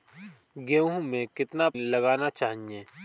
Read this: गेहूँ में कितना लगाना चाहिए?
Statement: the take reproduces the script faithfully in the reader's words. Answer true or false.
true